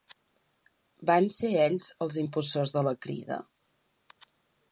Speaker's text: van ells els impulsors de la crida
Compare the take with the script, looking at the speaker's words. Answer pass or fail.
fail